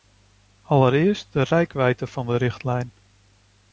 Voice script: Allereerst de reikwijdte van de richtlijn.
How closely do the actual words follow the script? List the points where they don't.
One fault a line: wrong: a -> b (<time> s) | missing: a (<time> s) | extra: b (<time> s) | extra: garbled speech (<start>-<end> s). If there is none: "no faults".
no faults